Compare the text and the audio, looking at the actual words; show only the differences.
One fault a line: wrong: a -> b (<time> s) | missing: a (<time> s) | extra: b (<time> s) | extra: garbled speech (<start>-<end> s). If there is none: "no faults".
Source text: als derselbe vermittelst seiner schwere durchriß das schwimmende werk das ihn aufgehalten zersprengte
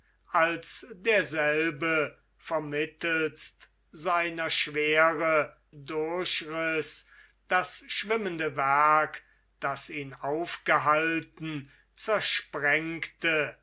no faults